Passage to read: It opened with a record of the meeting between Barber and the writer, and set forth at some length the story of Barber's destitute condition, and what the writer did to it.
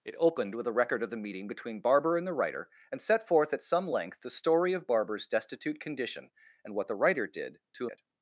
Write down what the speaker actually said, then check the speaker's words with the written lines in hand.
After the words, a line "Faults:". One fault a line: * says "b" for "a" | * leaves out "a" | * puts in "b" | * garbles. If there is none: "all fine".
It opened with a record of the meeting between Barber and the writer, and set forth at some length the story of Barber's destitute condition, and what the writer did to it.
Faults:
all fine